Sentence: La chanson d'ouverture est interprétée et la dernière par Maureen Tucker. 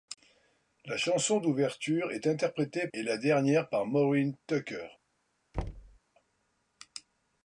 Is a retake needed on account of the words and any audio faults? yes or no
yes